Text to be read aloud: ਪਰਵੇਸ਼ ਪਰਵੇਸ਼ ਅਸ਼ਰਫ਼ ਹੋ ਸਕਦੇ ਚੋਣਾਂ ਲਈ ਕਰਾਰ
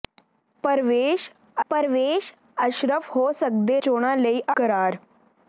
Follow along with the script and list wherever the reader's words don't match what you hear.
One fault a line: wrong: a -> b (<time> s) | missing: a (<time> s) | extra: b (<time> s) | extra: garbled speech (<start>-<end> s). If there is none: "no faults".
no faults